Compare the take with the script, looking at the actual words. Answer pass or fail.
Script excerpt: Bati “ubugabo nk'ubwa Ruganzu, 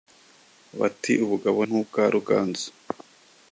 pass